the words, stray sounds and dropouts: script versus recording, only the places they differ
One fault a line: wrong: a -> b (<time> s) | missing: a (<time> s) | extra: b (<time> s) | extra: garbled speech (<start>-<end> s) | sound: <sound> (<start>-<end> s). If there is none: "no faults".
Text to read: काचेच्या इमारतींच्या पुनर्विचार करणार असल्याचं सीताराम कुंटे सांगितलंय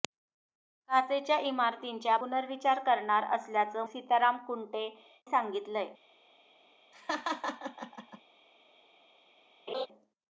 sound: laugh (6.9-8.2 s)
sound: laugh (9.7-9.9 s)